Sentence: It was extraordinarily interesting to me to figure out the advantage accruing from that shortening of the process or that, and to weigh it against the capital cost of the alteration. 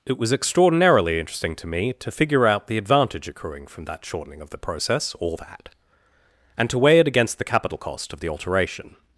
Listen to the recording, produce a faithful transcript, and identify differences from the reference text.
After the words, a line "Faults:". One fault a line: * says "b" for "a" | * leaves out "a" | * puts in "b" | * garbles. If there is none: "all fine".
It was extraordinarily interesting to me to figure out the advantage accruing from that shortening of the process or that, and to weigh it against the capital cost of the alteration.
Faults:
all fine